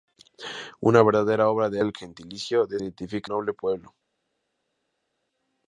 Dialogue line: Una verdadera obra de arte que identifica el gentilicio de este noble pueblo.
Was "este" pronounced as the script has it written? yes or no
no